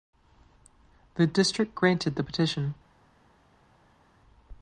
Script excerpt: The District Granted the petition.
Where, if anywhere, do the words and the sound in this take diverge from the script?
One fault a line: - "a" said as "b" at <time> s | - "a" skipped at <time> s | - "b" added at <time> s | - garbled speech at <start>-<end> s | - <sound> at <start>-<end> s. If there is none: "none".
none